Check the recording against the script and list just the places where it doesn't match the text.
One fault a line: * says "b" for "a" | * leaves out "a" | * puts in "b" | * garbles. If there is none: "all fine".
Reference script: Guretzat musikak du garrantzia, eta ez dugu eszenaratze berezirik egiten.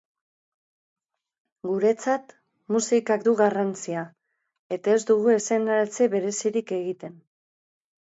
all fine